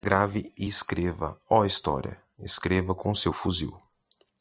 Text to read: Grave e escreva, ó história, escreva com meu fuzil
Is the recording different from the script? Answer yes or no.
yes